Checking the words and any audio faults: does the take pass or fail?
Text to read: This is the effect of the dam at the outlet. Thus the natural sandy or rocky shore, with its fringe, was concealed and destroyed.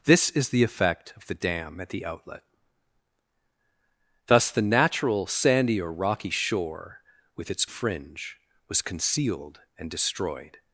pass